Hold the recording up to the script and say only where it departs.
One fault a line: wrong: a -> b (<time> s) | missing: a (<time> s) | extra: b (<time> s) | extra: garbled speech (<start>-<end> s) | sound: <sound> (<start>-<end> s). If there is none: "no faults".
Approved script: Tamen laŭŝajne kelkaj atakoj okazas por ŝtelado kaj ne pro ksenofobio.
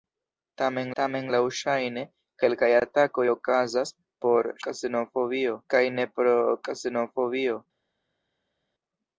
extra: tamen (1.0 s)
wrong: ŝtelado -> ksenofobio (4.7 s)